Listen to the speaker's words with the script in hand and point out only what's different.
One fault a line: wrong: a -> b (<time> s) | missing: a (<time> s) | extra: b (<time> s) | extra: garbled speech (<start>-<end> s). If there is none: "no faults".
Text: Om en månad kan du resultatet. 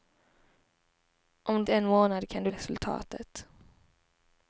no faults